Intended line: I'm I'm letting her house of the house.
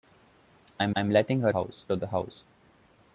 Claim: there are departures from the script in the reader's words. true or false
false